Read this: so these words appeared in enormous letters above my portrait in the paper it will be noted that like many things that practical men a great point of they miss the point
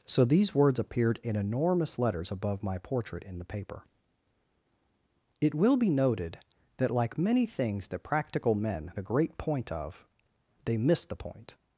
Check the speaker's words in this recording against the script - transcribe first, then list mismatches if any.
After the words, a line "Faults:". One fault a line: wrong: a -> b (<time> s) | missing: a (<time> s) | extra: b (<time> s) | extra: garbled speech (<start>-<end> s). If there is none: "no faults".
so these words appeared in enormous letters above my portrait in the paper it will be noted that like many things that practical men a great point of they miss the point
Faults:
no faults